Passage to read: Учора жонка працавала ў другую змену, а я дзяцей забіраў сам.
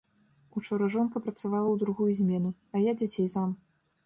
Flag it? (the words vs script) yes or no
yes